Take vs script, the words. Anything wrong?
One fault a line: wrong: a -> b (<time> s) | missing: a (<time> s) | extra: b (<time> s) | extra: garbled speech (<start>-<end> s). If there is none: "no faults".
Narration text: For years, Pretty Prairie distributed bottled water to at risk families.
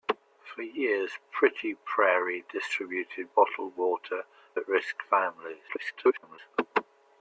missing: to (4.2 s)
extra: garbled speech (5.7-6.4 s)